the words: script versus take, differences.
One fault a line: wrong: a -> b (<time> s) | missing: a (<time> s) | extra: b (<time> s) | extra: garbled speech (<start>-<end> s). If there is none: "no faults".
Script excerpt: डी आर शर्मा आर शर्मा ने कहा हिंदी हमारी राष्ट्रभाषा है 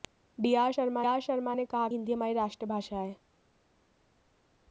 no faults